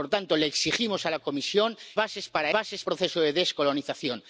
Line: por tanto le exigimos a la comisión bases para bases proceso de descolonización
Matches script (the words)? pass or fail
pass